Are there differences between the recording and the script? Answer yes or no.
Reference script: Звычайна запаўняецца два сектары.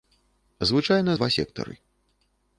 yes